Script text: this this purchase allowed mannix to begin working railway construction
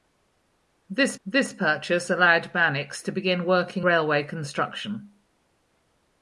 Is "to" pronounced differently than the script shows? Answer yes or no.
no